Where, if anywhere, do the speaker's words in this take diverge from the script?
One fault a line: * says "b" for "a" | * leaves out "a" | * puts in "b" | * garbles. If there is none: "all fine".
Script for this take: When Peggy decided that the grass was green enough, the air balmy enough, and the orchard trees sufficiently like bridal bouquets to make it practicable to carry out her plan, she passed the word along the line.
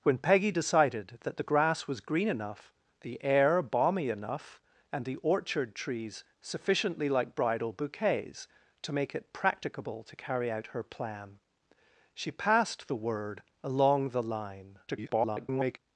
* garbles